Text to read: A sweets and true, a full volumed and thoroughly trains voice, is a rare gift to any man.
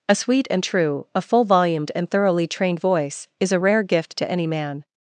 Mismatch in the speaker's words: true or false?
true